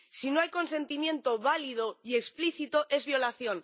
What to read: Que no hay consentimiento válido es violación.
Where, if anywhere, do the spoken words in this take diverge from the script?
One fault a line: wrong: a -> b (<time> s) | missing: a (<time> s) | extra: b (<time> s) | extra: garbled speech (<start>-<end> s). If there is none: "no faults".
wrong: Que -> Si (0.1 s)
extra: y explícito (2.0 s)